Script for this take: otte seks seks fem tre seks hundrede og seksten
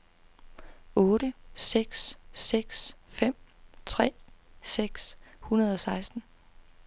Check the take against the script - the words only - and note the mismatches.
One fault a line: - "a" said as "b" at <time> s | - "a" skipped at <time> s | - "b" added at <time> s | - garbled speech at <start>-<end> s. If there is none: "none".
none